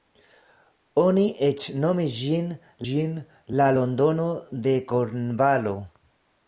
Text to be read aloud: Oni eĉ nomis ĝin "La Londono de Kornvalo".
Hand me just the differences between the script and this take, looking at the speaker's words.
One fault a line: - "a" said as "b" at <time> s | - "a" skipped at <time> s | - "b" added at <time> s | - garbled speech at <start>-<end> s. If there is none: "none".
- "ĝin" added at 2.9 s